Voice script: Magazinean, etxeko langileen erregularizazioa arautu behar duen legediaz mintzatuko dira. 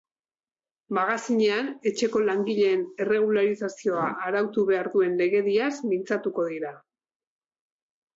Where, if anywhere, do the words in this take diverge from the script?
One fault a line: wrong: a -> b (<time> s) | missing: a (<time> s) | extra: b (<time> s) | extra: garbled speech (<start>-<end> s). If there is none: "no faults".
no faults